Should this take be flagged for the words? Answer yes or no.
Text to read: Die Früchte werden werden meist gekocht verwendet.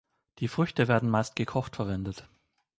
yes